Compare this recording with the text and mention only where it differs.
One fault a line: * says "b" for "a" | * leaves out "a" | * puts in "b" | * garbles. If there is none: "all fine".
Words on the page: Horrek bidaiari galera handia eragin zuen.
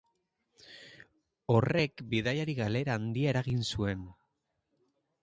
all fine